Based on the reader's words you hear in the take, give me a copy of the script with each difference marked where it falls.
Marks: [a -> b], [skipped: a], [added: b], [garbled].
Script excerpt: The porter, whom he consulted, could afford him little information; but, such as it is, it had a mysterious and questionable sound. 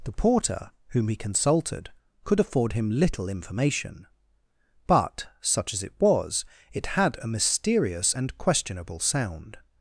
The porter, whom he consulted, could afford him little information; but, such as it [is, -> was] it had a mysterious and questionable sound.